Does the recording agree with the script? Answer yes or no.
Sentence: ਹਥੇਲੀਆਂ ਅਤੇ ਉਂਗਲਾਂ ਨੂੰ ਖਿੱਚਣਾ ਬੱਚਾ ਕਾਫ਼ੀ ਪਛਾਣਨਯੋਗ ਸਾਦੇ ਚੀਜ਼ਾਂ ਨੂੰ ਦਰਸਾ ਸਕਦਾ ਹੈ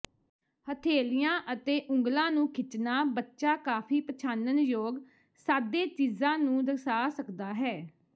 yes